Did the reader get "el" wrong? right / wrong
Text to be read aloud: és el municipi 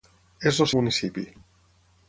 right